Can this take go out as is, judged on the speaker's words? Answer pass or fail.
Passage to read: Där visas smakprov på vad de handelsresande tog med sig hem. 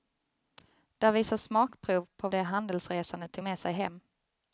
fail